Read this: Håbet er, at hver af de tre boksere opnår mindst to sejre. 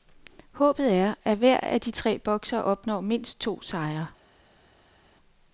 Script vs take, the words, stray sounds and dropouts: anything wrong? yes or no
no